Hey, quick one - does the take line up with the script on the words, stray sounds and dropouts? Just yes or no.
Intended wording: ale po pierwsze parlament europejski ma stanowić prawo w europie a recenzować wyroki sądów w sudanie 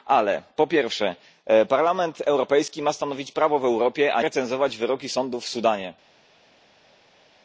yes